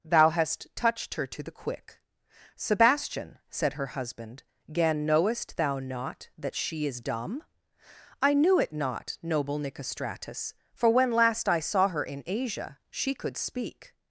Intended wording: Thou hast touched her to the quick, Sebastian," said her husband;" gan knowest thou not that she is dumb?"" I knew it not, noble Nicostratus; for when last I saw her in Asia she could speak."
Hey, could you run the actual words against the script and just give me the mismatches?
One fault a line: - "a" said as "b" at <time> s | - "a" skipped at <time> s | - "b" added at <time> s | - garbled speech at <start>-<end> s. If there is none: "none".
none